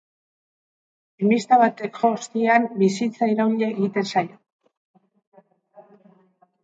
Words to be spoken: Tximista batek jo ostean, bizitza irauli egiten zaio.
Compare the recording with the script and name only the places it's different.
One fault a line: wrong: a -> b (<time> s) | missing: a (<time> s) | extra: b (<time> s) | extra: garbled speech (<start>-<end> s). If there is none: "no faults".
no faults